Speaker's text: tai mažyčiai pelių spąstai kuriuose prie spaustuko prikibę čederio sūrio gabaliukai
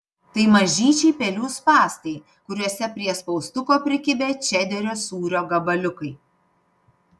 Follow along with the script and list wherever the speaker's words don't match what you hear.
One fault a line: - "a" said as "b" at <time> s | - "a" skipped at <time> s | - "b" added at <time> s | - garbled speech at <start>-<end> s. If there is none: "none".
none